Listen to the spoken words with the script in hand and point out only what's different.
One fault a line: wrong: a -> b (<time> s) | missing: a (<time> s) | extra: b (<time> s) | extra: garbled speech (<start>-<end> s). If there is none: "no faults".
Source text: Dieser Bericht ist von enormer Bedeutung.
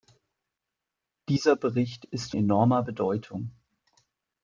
missing: von (2.3 s)